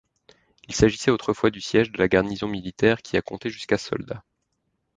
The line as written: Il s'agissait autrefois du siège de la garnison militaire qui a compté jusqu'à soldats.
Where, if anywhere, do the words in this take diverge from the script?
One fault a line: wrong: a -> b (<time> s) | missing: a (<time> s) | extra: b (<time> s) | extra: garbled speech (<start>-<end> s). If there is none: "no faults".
no faults